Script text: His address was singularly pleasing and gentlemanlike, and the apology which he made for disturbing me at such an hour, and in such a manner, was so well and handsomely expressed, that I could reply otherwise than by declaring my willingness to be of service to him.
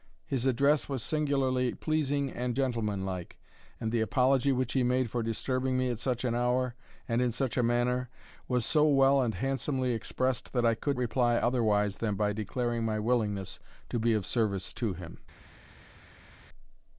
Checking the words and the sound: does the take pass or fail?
pass